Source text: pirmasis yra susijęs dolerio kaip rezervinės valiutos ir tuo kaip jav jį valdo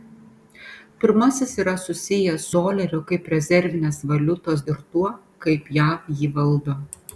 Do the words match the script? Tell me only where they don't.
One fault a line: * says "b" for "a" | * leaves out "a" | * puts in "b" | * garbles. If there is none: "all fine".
all fine